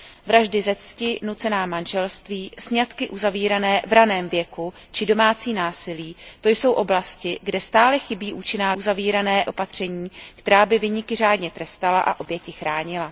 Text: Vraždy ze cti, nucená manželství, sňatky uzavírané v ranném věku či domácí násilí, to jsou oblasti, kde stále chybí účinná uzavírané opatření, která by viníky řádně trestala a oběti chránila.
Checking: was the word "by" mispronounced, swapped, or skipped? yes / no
no